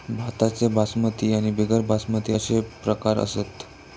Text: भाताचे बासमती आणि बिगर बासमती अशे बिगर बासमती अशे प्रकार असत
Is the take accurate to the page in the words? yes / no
no